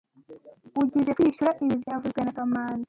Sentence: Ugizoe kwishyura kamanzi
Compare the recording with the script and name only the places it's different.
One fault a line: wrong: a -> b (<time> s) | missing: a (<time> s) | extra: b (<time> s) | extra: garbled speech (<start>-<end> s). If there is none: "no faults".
extra: ibi byavuzwe na (1.6 s)